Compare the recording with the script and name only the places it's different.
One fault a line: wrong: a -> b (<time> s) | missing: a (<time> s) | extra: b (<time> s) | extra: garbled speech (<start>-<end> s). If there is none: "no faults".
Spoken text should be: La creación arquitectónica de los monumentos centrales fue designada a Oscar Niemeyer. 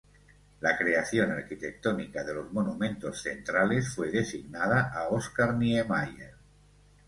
no faults